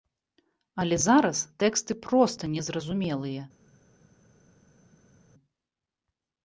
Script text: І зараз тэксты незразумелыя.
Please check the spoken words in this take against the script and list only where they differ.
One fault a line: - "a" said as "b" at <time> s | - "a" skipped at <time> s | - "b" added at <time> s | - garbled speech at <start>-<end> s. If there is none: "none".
- "І" said as "Але" at 0.8 s
- "проста" added at 2.0 s